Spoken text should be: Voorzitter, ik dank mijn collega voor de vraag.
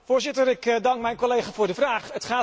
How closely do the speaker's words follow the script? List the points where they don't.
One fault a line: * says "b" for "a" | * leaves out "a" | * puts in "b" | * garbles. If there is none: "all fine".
all fine